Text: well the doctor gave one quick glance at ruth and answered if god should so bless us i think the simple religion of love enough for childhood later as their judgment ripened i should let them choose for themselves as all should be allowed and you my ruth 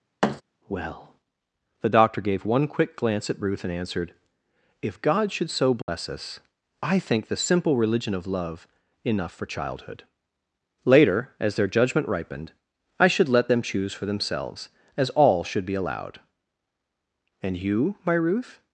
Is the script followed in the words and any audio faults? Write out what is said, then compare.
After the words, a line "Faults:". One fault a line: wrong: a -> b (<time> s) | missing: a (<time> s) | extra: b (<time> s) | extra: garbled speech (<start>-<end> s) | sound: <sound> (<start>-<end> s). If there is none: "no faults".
well the doctor gave one quick glance at ruth and answered if god should so bless us i think the simple religion of love enough for childhood later as their judgment ripened i should let them choose for themselves as all should be allowed and you my ruth
Faults:
sound: thud (0.2-0.4 s)
sound: dropout (5.8-5.9 s)